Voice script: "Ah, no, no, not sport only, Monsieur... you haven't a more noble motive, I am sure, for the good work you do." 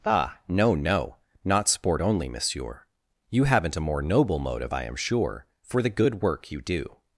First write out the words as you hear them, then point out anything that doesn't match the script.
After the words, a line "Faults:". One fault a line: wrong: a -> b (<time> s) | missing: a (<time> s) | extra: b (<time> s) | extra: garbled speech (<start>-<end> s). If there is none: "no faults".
"Ah, no, no, not sport only, Monsieur... you haven't a more noble motive, I am sure, for the good work you do."
Faults:
no faults